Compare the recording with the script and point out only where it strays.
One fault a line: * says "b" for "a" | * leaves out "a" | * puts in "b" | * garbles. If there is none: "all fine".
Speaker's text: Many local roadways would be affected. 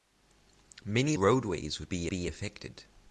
* leaves out "local"
* puts in "be"